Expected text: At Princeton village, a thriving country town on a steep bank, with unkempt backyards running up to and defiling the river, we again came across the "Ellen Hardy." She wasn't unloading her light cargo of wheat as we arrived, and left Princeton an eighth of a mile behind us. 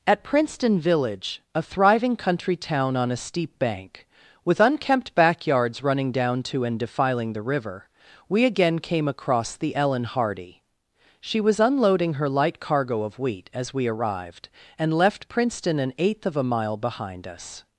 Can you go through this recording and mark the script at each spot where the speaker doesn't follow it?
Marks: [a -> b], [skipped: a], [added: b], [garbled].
At Princeton village, a thriving country town on a steep bank, with unkempt backyards running [up -> down] to and defiling the river, we again came across the "Ellen Hardy." She [wasn't -> was] unloading her light cargo of wheat as we arrived, and left Princeton an eighth of a mile behind us.